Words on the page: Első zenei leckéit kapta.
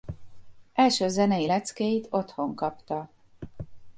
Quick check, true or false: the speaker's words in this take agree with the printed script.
false